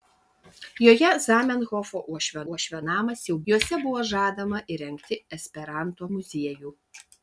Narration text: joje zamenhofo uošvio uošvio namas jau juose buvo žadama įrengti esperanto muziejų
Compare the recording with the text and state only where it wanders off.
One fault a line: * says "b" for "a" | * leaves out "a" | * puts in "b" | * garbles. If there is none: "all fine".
all fine